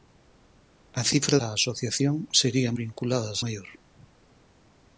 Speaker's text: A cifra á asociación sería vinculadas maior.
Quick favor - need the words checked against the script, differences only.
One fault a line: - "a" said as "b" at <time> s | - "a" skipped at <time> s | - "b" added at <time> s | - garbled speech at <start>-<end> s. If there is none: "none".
none